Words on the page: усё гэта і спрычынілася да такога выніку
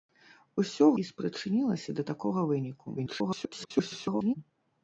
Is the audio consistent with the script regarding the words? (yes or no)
no